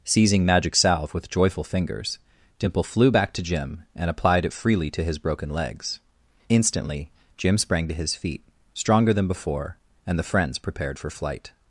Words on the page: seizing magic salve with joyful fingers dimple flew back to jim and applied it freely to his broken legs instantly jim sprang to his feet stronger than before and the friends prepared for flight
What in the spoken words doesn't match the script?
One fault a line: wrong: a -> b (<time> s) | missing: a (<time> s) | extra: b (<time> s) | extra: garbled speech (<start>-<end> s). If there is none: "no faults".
no faults